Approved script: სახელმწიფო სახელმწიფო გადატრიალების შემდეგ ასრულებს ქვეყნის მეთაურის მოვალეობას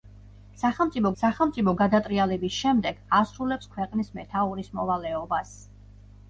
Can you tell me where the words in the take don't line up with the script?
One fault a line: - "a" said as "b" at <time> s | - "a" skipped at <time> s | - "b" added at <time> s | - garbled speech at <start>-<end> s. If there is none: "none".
none